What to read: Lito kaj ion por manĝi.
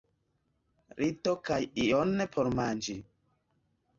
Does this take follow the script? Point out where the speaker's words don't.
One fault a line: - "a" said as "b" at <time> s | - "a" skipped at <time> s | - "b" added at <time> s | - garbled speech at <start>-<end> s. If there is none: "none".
none